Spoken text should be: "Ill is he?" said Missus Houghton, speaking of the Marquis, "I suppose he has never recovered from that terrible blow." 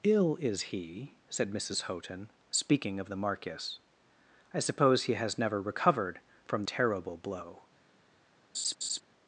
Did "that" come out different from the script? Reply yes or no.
yes